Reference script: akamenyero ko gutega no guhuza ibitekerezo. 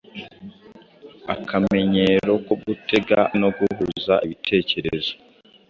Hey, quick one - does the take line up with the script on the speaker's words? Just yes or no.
yes